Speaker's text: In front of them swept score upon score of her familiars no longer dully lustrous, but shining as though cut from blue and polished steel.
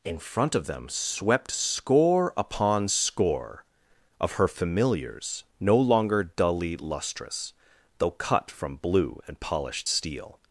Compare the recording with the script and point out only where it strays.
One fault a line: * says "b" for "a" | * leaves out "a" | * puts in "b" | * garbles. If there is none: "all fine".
* leaves out "but shining as"